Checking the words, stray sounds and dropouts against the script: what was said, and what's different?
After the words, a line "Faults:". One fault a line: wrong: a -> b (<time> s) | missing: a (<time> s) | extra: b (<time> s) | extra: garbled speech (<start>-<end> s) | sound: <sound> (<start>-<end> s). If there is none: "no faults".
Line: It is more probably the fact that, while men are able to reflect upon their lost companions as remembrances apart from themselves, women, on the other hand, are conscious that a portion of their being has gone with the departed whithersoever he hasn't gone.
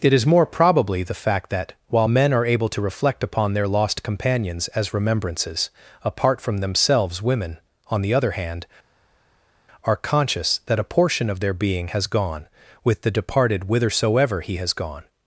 It is more probably the fact that, while men are able to reflect upon their lost companions as remembrances apart from themselves, women, on the other hand, are conscious that a portion of their being has gone with the departed whithersoever he has gone.
Faults:
wrong: hasn't -> has (14.6 s)